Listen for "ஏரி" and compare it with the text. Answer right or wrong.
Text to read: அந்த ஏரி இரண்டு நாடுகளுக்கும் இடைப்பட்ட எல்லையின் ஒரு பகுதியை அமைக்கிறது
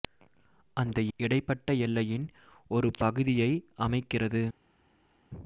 wrong